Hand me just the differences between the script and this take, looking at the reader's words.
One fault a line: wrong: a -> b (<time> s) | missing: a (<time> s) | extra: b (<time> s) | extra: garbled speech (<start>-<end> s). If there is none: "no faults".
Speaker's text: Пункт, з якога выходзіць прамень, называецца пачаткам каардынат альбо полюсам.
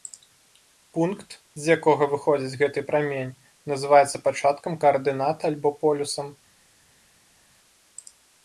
extra: гэты (2.6 s)